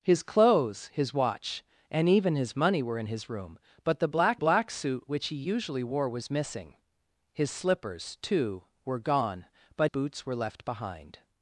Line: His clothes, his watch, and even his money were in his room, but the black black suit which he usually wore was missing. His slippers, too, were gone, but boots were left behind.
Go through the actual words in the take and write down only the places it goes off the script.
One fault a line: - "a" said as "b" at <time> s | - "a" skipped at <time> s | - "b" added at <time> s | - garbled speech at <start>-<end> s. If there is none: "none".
none